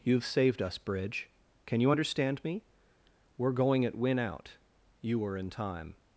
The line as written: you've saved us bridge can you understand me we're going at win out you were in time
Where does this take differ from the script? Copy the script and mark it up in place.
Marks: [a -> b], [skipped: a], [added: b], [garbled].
you've saved us bridge can you understand me we're going at win out you were in time